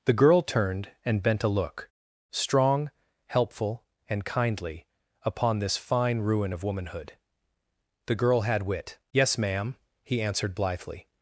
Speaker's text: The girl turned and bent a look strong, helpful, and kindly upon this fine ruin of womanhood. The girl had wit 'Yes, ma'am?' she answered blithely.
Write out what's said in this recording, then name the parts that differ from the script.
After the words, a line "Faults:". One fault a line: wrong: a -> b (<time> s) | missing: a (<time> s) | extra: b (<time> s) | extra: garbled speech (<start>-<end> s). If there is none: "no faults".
The girl turned and bent a look strong, helpful, and kindly upon this fine ruin of womanhood. The girl had wit 'Yes, ma'am?' he answered blithely.
Faults:
wrong: she -> he (10.0 s)